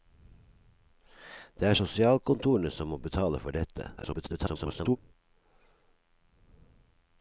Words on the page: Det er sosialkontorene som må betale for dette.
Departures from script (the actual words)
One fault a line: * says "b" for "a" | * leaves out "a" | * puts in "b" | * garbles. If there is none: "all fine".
* garbles